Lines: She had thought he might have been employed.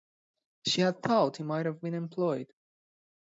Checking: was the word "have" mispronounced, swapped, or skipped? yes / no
no